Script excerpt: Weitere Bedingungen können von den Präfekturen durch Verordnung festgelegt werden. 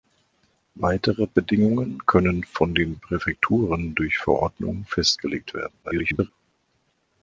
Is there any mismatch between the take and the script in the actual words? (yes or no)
yes